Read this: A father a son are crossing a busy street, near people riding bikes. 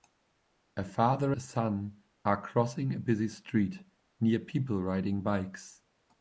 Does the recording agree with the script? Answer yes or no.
yes